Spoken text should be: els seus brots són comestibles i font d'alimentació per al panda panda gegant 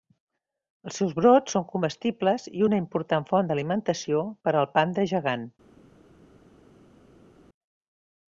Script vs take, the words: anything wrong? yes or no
yes